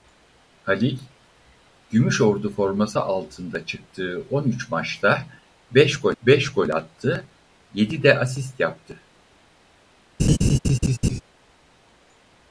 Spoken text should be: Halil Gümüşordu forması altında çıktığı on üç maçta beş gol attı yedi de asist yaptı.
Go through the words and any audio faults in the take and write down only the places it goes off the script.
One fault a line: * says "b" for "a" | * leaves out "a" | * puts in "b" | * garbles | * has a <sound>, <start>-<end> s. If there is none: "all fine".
* puts in "beş gol"
* has a laugh, 10.2-11.2 s